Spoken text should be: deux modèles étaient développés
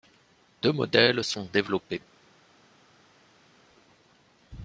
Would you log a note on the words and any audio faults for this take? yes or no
yes